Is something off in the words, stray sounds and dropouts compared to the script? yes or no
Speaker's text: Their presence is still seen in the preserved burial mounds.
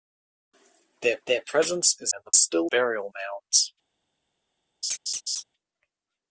yes